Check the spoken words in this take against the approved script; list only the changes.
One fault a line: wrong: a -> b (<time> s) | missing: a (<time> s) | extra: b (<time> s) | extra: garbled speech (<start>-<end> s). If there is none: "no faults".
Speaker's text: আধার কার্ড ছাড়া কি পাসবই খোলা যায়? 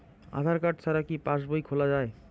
no faults